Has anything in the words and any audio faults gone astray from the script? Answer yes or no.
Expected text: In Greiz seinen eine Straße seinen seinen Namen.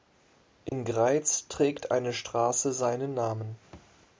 yes